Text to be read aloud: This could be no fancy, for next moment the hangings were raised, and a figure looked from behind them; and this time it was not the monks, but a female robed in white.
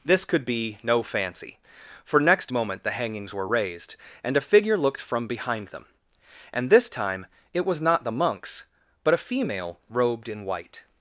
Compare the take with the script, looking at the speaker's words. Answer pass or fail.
pass